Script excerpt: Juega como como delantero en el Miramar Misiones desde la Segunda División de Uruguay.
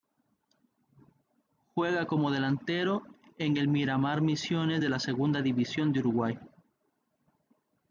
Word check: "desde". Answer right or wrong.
wrong